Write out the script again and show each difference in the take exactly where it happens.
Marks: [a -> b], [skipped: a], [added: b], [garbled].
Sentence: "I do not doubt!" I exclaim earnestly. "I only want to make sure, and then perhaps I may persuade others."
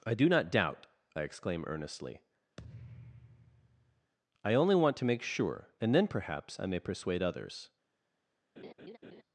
"I do not doubt!" I exclaim earnestly. "I only want to make sure, and then perhaps I may persuade others."